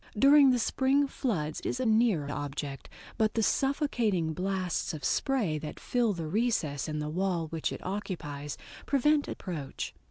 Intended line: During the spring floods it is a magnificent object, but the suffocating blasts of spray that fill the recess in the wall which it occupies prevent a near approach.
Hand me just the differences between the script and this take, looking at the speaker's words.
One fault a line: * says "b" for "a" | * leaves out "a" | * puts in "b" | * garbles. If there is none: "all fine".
* leaves out "it"
* says "near" for "magnificent"
* leaves out "near"